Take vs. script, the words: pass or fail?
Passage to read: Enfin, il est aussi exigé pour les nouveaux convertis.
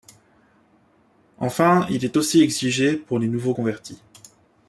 pass